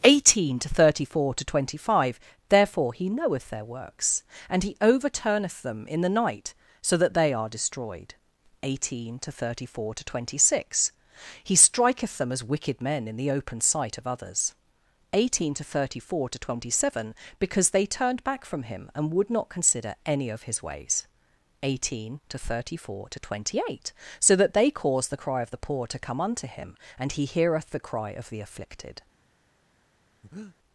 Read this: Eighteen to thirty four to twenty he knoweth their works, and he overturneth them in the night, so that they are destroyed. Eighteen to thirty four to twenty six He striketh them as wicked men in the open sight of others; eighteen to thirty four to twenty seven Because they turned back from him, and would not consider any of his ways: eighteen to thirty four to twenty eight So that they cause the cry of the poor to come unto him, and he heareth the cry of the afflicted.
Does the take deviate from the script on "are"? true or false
false